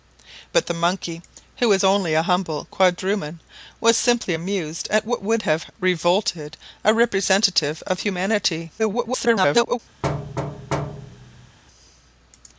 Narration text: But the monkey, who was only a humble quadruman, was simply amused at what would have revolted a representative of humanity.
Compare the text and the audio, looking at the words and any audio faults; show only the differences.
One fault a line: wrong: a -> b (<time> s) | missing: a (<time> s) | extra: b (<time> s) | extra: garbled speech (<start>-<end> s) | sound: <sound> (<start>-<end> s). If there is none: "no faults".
extra: garbled speech (8.8-9.8 s)
sound: thud (10.0-11.6 s)